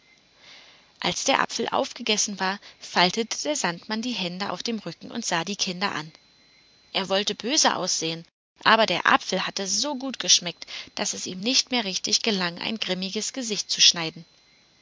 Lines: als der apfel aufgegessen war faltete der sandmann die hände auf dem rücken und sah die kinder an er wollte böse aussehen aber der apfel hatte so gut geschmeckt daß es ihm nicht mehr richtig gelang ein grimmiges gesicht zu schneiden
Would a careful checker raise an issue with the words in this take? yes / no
no